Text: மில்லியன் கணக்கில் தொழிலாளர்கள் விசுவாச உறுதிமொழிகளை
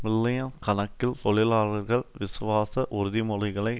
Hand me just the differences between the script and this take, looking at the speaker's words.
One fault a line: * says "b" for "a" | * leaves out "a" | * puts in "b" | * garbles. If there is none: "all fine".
all fine